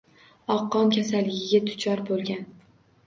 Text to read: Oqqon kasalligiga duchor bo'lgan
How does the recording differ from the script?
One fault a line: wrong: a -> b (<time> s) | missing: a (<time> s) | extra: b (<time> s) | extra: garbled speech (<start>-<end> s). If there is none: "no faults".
no faults